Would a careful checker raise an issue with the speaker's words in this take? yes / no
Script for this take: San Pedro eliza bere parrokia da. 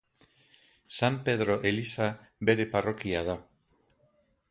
no